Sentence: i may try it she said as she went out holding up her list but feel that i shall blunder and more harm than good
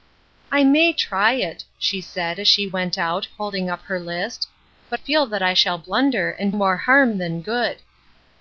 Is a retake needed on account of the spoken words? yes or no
no